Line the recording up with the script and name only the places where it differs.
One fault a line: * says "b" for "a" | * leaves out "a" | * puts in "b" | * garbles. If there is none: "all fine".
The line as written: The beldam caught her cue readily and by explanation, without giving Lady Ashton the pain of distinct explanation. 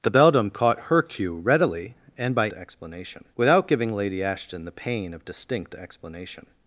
all fine